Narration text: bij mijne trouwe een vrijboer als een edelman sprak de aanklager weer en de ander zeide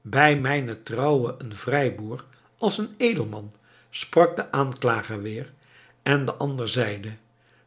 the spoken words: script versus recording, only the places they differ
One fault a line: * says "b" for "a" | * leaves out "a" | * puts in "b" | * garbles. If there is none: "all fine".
all fine